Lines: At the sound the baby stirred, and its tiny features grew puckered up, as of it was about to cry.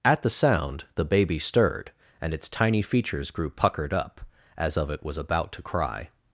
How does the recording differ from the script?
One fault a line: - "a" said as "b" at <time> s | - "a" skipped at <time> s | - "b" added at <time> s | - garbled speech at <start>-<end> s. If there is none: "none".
none